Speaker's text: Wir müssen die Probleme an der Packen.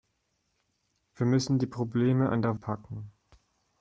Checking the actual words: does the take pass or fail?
pass